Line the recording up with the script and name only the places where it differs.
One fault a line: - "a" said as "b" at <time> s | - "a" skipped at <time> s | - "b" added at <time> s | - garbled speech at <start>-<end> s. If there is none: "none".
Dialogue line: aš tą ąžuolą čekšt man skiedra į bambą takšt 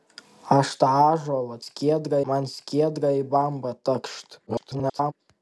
- "čekšt" said as "skiedra" at 1.6 s
- garbled speech at 4.5-5.1 s